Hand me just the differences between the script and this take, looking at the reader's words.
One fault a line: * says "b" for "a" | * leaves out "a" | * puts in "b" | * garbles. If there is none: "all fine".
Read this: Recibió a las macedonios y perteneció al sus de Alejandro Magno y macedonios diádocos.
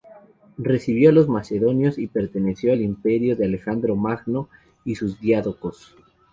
* says "los" for "las"
* says "imperio" for "sus"
* says "sus" for "macedonios"